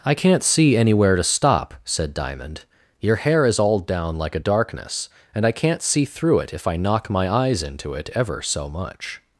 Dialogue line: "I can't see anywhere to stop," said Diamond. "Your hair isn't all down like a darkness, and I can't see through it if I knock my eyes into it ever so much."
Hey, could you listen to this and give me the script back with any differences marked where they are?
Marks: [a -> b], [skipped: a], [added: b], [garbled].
"I can't see anywhere to stop," said Diamond. "Your hair [isn't -> is] all down like a darkness, and I can't see through it if I knock my eyes into it ever so much."